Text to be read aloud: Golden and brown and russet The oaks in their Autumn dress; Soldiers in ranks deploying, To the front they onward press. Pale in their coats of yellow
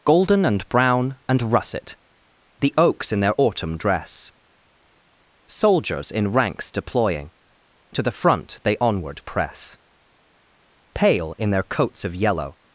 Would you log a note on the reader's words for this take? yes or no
no